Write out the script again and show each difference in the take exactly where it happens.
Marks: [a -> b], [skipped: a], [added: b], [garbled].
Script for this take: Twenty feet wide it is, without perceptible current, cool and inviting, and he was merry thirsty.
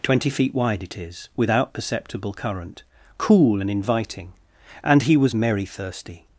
Twenty feet wide it is, without perceptible current, cool and inviting, and he was merry thirsty.